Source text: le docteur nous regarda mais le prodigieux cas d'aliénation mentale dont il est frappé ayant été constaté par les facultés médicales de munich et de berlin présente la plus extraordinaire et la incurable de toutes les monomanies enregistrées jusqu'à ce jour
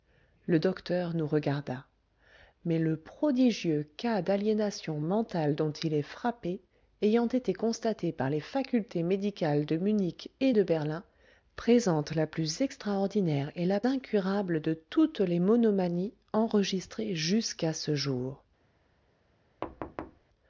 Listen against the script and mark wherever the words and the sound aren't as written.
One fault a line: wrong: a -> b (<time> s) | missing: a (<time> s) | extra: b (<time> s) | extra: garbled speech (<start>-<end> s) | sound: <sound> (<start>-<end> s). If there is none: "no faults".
sound: thud (19.6-20.2 s)